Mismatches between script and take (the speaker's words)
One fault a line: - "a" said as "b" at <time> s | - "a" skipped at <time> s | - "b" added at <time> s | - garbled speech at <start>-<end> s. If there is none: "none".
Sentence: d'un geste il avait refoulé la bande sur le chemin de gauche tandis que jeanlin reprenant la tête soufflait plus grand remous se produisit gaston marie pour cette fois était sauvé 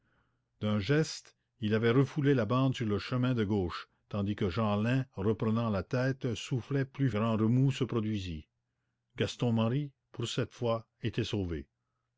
none